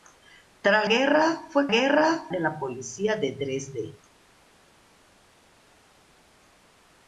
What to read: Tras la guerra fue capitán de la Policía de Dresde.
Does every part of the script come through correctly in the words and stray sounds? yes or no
no